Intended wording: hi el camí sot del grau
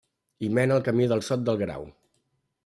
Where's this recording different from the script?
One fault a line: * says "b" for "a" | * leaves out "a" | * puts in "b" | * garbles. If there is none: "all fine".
* puts in "mena"
* puts in "del"